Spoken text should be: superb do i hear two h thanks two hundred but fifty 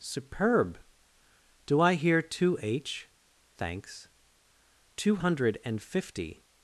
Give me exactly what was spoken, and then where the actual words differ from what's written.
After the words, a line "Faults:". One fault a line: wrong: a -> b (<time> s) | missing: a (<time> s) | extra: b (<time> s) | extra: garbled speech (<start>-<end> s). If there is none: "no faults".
superb do i hear two h thanks two hundred and fifty
Faults:
wrong: but -> and (5.6 s)